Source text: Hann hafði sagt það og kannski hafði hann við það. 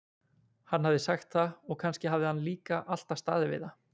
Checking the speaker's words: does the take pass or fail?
fail